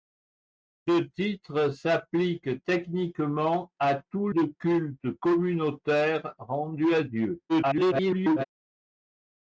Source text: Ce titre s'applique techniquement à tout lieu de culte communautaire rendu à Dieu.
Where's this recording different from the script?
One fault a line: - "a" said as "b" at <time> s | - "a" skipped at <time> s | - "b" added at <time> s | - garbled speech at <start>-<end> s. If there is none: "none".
- "lieu" skipped at 4.3 s
- garbled speech at 7.5-8.4 s